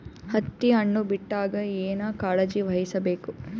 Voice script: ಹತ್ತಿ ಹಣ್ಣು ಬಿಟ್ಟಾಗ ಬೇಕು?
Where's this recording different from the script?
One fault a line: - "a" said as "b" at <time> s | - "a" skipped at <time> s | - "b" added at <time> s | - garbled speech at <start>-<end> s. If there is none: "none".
- "ಏನ ಕಾಳಜಿ ವಹಿಸ" added at 1.8 s